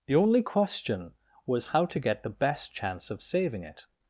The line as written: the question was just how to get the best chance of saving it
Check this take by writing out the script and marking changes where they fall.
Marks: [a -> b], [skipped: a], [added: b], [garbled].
the [added: only] question was [skipped: just] how to get the best chance of saving it